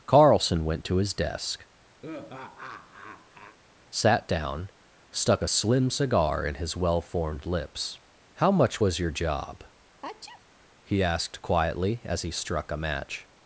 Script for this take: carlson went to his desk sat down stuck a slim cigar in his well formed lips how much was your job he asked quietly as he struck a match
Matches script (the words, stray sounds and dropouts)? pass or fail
fail